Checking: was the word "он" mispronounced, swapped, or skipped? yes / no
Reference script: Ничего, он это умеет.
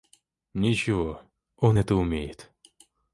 no